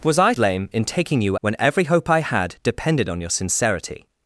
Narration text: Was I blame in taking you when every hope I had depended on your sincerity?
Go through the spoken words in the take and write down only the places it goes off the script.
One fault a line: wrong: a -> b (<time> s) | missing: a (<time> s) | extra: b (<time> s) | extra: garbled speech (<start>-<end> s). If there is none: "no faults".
no faults